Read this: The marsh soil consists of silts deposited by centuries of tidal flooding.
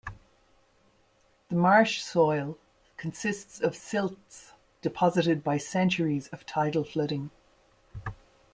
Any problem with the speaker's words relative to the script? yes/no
no